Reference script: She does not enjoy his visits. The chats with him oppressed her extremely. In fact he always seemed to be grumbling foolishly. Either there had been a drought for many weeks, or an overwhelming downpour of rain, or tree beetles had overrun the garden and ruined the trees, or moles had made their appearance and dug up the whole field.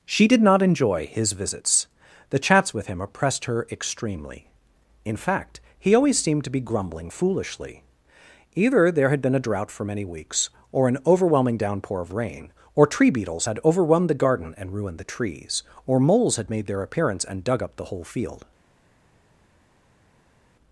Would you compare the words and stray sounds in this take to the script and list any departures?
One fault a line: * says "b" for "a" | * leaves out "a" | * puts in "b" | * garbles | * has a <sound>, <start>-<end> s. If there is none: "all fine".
* says "did" for "does"